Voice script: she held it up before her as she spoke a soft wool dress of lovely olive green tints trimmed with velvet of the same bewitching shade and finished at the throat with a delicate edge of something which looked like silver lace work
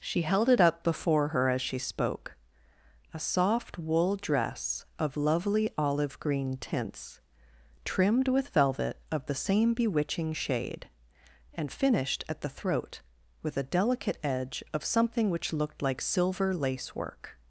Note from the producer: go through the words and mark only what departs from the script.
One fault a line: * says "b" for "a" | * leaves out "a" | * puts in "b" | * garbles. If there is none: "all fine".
all fine